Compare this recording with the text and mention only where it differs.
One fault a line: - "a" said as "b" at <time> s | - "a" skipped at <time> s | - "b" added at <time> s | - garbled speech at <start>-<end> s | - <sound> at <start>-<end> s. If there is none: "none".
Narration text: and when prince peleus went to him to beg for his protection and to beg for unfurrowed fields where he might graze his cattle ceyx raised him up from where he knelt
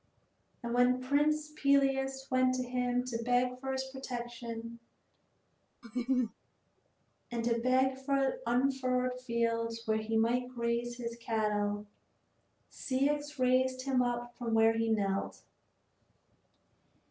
- laugh at 5.8-6.3 s